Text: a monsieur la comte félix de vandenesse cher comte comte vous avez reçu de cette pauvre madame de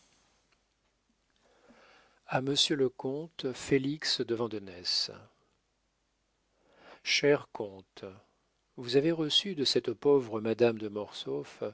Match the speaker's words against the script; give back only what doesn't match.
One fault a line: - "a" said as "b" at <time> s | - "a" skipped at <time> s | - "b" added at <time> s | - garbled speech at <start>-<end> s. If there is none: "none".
- "la" said as "le" at 2.8 s
- "comte" skipped at 8.0 s